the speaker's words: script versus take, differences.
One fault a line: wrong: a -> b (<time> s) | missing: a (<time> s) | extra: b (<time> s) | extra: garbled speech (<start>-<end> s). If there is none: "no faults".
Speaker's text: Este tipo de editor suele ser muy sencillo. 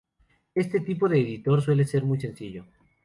no faults